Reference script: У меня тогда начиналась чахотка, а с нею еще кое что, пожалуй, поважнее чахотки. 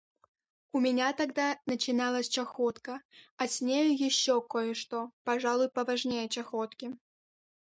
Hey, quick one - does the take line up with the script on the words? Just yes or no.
yes